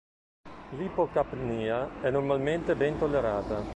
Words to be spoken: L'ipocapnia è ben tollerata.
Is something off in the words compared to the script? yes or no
yes